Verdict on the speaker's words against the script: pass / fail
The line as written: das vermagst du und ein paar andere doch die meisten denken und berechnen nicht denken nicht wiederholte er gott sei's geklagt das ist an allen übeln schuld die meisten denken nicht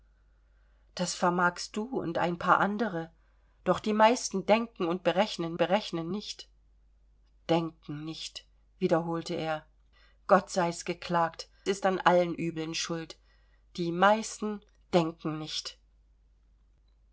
fail